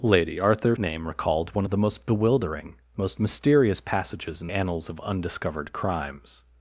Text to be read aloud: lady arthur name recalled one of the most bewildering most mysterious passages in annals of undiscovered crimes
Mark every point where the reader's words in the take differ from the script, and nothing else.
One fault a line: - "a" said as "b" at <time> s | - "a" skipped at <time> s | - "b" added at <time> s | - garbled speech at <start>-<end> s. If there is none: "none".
none